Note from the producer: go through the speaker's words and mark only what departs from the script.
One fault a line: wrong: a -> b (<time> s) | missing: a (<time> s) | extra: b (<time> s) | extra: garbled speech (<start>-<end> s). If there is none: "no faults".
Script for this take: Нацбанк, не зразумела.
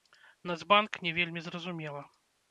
extra: вельмі (1.2 s)